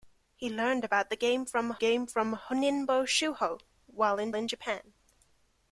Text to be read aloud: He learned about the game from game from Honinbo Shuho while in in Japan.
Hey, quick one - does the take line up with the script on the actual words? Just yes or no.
yes